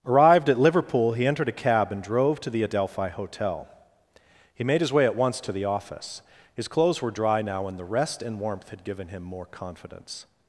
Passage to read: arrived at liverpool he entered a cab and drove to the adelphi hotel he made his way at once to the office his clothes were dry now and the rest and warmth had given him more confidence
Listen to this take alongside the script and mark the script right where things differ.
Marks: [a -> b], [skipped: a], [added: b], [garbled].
arrived at liverpool he entered a cab and drove to the adelphi hotel he made his way at once to the office his clothes were dry now and the rest and warmth had given him more confidence